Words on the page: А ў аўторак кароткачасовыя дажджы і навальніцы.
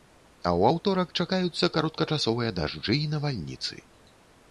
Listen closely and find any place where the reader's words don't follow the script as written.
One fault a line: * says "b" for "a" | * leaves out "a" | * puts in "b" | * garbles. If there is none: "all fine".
* puts in "чакаюцца"